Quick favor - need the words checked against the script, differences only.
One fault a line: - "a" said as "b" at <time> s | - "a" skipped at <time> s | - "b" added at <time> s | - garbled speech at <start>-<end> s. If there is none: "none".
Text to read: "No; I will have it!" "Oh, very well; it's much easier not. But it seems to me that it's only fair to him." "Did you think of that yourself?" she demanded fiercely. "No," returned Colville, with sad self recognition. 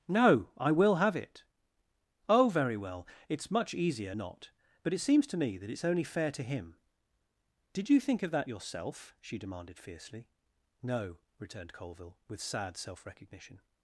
none